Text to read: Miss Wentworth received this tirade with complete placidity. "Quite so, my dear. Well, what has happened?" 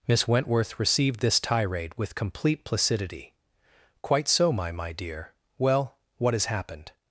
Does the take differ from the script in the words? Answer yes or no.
yes